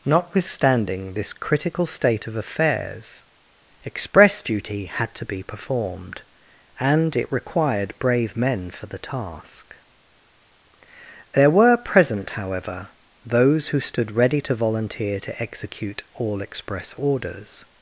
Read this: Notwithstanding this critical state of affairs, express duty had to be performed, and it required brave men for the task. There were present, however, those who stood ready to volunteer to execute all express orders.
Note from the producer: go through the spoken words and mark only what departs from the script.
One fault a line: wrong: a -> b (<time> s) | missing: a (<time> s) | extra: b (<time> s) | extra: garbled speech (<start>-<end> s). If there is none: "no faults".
no faults